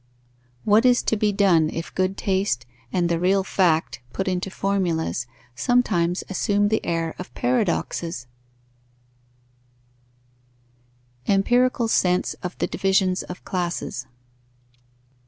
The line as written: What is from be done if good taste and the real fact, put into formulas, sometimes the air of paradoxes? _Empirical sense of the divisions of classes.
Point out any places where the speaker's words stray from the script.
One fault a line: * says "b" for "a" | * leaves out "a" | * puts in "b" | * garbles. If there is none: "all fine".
* says "to" for "from"
* puts in "assume"